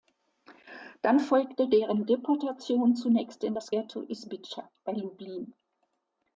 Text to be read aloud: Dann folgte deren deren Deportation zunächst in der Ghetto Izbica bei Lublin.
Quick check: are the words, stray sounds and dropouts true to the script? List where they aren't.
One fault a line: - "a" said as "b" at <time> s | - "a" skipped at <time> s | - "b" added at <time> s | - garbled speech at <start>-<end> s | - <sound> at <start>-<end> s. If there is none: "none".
- "deren" skipped at 2.1 s
- "der" said as "das" at 3.5 s